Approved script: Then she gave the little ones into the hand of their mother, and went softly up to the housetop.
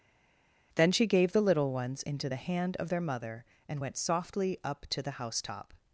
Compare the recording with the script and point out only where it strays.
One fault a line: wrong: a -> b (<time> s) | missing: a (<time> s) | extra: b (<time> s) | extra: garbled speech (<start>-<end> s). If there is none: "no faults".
no faults